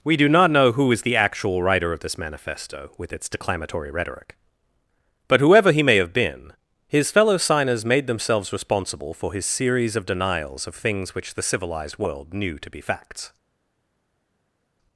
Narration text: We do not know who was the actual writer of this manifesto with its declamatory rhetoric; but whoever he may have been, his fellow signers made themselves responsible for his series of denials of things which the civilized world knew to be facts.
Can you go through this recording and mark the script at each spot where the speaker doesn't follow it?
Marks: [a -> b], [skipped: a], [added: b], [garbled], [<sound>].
We do not know who [was -> is] the actual writer of this manifesto with its declamatory rhetoric; but whoever he may have been, his fellow signers made themselves responsible for his series of denials of things which the civilized world knew to be facts.